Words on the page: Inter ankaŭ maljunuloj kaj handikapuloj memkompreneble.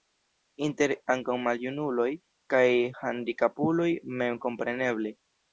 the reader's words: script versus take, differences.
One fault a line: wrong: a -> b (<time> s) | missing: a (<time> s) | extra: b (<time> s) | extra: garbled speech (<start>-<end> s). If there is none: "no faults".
no faults